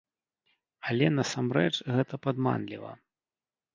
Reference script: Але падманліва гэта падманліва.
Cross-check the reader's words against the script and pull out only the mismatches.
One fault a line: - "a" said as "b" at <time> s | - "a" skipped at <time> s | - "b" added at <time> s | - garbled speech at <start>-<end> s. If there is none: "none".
- "падманліва" said as "насамрэч" at 1.2 s